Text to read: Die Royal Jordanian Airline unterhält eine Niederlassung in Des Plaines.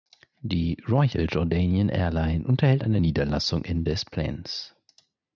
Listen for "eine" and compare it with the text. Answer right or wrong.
right